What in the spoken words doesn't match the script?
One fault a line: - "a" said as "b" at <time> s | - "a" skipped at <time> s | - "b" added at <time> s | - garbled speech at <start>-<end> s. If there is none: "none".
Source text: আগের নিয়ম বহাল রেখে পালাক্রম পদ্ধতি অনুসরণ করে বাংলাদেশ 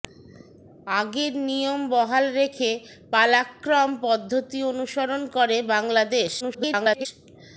- garbled speech at 6.4-7.1 s